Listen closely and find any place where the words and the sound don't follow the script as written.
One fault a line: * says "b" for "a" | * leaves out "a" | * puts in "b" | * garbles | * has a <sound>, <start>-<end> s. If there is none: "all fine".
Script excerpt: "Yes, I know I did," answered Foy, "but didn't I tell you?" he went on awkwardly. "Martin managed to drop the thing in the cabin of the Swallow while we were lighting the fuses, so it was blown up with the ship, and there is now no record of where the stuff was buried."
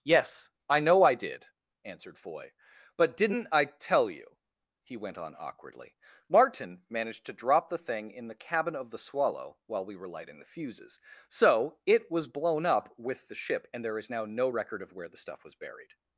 all fine